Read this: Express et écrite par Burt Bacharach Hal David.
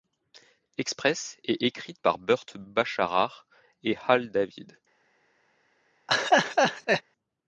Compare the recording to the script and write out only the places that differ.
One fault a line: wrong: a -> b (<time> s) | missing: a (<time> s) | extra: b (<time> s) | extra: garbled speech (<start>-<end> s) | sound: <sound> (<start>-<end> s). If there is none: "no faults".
extra: et (3.8 s)
sound: laugh (6.1-7.0 s)